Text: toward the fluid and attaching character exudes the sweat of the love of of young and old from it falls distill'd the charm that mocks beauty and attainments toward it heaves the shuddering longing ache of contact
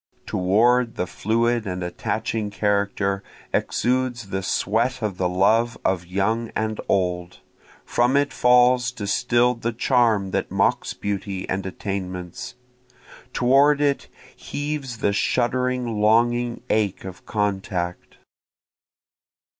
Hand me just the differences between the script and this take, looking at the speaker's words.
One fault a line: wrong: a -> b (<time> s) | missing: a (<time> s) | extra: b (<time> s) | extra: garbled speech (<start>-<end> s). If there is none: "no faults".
missing: of (6.1 s)